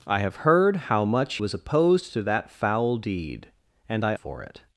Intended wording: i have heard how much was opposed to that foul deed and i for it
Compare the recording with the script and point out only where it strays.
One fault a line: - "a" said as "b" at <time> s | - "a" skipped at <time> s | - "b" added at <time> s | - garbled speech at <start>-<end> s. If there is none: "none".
none